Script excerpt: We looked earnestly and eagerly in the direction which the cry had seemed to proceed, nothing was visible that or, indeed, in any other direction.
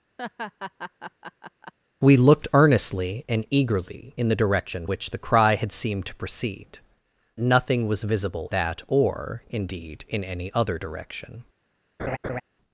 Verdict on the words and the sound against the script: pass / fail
fail